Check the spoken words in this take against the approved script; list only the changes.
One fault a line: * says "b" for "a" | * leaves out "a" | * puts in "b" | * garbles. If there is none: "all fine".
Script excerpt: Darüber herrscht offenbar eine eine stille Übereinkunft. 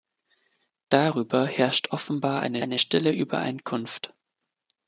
all fine